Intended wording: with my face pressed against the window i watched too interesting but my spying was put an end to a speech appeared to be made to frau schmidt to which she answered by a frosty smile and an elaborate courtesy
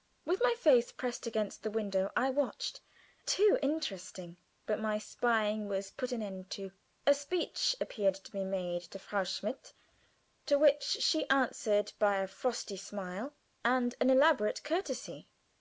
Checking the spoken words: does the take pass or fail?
pass